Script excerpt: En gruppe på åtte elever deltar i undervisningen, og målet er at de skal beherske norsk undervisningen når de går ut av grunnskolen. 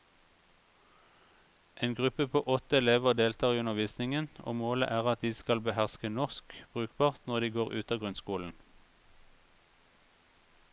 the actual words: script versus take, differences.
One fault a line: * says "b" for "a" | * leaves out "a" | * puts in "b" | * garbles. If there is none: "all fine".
* says "brukbart" for "undervisningen"